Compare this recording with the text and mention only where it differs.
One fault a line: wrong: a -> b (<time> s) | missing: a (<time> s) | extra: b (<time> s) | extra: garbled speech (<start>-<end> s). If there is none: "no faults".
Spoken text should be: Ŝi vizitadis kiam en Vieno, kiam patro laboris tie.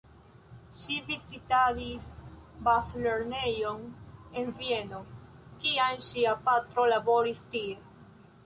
wrong: kiam -> bazlernejon (2.7 s)
extra: ŝia (6.1 s)